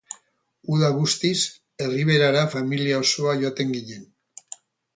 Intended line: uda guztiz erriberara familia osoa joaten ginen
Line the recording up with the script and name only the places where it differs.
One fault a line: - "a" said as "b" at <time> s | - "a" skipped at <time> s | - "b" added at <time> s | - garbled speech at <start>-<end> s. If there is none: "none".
none